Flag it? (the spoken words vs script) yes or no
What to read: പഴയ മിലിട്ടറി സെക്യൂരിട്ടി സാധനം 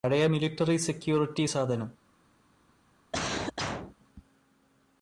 no